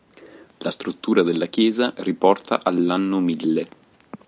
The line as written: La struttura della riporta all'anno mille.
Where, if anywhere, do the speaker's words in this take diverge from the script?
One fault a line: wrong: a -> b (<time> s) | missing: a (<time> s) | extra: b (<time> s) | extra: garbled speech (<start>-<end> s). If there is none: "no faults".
extra: chiesa (1.5 s)